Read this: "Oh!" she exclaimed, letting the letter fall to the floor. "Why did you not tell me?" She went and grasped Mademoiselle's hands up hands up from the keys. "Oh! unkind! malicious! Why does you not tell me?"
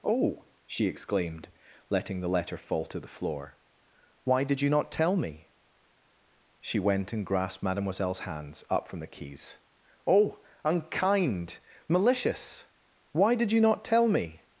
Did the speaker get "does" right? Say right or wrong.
wrong